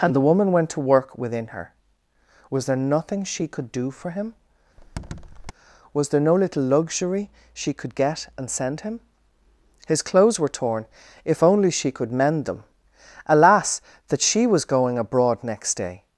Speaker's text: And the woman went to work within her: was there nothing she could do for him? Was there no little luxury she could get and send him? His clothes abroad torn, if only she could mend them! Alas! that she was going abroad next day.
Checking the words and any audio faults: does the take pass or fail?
fail